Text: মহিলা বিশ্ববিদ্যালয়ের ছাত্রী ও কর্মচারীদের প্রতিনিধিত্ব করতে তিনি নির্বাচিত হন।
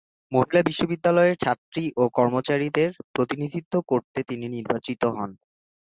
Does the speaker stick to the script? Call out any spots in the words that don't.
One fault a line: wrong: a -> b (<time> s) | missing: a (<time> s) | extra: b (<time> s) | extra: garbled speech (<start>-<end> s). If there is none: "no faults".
no faults